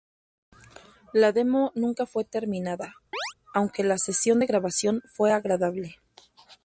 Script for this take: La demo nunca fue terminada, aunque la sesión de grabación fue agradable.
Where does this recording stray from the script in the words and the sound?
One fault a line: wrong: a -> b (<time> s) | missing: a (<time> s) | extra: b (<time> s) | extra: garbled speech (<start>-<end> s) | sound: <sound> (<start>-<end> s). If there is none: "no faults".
sound: chirp (3.1-3.3 s)